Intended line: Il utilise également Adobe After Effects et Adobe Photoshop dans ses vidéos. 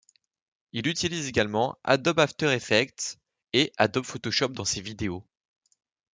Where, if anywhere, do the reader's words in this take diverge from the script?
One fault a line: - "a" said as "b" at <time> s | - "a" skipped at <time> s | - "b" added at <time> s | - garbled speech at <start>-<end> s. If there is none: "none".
none